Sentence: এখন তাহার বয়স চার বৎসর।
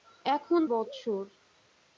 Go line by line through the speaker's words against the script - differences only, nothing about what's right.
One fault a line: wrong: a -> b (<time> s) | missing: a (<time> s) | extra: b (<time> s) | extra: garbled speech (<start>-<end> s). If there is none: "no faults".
missing: তাহার বয়স চার (0.6 s)